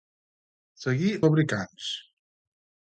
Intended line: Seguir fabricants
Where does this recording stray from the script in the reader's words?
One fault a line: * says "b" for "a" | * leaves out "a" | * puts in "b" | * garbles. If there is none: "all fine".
all fine